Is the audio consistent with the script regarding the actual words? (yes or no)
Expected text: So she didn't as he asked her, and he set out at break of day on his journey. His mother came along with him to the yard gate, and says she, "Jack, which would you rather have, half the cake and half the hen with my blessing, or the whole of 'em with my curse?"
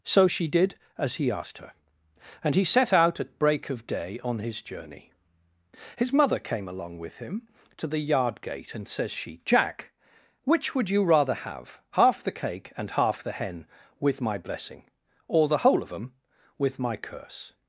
no